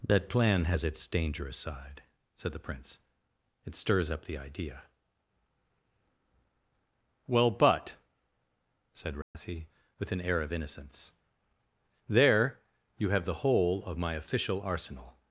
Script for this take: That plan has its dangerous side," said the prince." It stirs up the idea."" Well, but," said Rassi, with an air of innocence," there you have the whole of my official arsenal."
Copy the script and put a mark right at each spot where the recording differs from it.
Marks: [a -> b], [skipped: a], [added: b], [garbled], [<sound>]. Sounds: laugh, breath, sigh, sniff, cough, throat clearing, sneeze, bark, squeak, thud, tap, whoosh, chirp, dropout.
That plan has its dangerous side," said the prince." It stirs up the idea."" Well, but," said Rassi, [dropout] with an air of innocence," there you have the whole of my official arsenal."